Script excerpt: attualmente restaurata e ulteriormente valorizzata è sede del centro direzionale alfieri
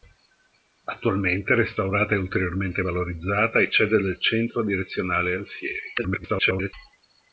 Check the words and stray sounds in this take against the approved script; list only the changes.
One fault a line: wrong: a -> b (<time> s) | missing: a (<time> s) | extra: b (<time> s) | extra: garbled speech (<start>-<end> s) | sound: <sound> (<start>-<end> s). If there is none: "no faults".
extra: garbled speech (6.0-6.7 s)